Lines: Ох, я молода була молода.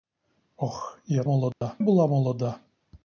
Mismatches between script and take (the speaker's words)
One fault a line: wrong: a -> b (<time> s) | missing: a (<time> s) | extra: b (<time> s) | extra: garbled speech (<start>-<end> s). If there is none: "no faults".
no faults